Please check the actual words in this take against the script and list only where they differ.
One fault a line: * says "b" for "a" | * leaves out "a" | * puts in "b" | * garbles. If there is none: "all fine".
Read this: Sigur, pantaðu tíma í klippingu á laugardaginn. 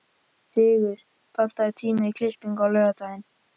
all fine